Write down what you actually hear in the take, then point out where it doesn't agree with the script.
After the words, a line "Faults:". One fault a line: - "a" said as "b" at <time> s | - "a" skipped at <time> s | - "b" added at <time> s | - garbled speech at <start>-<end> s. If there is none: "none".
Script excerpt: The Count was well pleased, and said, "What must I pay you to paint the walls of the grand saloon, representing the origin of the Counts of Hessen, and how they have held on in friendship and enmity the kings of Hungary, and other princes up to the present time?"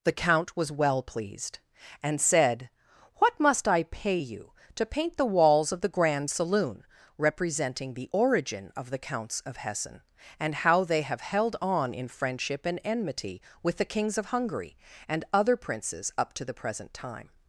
The Count was well pleased, and said, "What must I pay you to paint the walls of the grand saloon, representing the origin of the Counts of Hessen, and how they have held on in friendship and enmity with the kings of Hungary, and other princes up to the present time?"
Faults:
- "with" added at 13.6 s